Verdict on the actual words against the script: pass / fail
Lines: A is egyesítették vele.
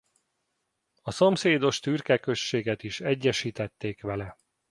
fail